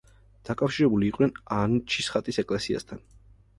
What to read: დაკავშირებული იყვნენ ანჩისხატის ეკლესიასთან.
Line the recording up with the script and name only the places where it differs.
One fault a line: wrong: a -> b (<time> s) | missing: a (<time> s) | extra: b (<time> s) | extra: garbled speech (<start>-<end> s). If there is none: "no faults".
no faults